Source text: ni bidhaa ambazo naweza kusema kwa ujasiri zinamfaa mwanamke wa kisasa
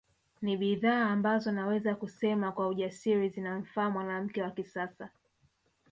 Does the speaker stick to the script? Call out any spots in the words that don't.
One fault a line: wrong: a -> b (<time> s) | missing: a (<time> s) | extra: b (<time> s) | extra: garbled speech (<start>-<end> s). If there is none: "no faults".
no faults